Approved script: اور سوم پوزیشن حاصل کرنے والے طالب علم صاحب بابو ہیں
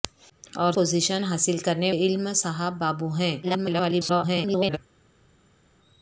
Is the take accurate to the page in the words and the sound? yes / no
no